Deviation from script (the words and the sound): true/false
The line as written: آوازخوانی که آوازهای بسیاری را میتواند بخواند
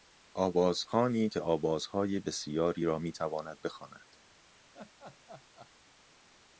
true